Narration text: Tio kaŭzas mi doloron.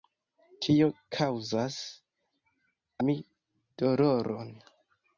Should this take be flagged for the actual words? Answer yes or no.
no